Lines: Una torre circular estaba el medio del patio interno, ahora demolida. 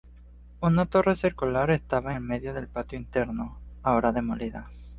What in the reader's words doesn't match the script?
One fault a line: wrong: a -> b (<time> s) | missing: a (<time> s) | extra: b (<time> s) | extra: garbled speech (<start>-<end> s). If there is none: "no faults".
no faults